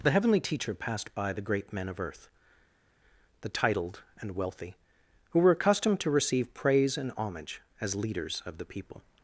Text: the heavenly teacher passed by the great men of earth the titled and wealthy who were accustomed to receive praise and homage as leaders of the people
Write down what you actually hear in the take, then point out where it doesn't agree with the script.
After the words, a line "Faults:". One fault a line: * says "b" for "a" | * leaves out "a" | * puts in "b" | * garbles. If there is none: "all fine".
the heavenly teacher passed by the great men of earth the titled and wealthy who were accustomed to receive praise and homage as leaders of the people
Faults:
all fine